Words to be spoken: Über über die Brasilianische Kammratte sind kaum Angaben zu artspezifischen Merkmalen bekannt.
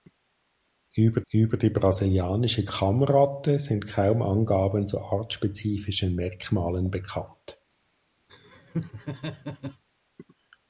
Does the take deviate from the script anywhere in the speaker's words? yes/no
no